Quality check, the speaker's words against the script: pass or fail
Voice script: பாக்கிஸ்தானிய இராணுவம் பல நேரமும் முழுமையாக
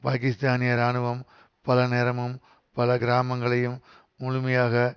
fail